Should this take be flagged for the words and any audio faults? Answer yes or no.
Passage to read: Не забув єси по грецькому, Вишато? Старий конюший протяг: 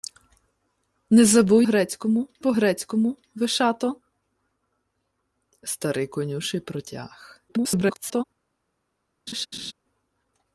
yes